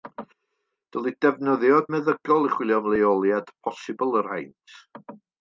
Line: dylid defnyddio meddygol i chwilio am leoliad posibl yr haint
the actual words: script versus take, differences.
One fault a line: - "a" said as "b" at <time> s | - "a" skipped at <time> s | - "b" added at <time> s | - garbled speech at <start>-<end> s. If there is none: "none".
none